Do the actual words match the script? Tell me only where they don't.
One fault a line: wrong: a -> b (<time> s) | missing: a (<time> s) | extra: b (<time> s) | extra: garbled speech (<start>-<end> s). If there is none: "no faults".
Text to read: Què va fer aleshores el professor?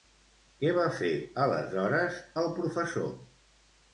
no faults